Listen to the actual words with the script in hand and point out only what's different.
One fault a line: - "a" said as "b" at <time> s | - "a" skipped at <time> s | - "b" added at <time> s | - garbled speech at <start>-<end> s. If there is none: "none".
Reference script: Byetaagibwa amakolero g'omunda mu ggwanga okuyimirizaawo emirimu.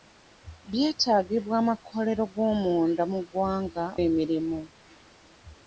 - "okuyimirizaawo" skipped at 3.9 s